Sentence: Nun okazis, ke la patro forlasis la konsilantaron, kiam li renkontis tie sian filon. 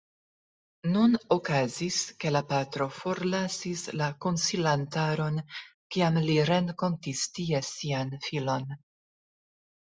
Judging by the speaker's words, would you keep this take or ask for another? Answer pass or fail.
pass